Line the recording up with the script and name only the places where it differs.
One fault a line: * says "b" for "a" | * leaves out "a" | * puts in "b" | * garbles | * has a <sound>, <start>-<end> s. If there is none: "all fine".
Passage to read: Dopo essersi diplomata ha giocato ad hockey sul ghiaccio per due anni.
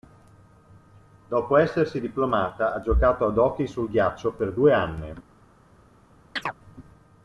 * has a chirp, 6.4-6.6 s